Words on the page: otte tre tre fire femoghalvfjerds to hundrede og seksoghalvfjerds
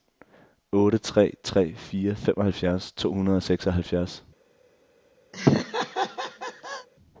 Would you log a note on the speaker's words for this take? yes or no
no